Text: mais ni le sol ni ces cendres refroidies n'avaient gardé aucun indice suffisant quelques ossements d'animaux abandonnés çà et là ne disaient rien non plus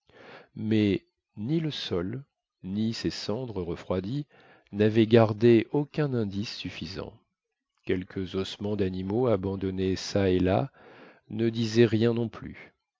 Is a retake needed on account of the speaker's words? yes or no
no